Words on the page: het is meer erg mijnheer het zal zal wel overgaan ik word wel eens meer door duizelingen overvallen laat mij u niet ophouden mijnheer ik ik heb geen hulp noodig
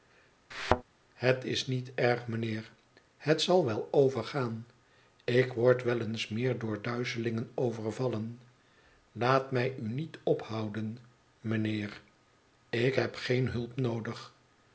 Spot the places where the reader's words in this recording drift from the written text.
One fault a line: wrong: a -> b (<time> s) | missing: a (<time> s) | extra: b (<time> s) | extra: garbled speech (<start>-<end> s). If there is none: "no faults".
wrong: meer -> niet (1.7 s)
missing: zal (3.6 s)
missing: ik (12.9 s)